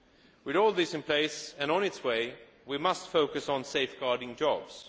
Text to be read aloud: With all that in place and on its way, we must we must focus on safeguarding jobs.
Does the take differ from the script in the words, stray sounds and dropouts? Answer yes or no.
yes